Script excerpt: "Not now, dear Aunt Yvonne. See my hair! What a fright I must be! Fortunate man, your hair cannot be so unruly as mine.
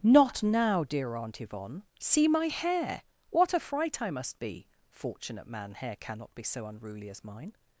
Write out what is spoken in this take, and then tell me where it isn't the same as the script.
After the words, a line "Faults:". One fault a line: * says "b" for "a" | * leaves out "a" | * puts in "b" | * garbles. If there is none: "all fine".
"Not now, dear Aunt Yvonne. See my hair! What a fright I must be! Fortunate man, hair cannot be so unruly as mine.
Faults:
* leaves out "your"